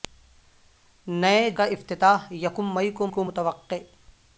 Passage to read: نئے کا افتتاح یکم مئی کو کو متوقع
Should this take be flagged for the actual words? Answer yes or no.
no